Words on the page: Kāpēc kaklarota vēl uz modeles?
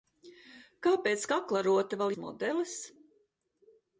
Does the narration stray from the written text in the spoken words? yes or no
no